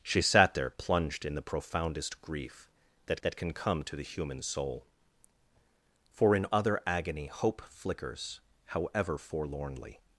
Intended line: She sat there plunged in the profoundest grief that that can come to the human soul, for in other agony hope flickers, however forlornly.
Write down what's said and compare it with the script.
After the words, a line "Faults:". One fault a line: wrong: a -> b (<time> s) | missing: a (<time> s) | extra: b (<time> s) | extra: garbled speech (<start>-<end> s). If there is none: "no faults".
She sat there plunged in the profoundest grief that that can come to the human soul, for in other agony hope flickers, however forlornly.
Faults:
no faults